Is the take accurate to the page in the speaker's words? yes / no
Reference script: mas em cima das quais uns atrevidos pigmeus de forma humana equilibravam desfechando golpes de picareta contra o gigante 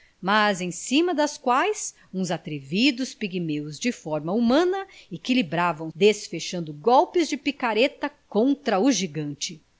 yes